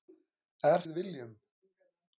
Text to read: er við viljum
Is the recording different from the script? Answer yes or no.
no